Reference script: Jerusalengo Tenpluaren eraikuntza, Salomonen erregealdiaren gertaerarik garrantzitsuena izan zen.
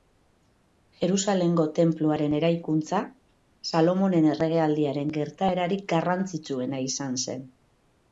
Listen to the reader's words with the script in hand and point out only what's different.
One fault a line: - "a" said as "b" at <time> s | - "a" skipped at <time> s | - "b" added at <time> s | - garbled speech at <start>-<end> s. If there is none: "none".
none